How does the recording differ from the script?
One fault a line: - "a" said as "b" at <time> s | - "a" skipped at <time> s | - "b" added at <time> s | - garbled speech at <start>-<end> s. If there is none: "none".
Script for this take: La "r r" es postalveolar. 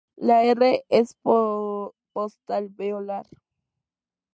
- "r" skipped at 0.8 s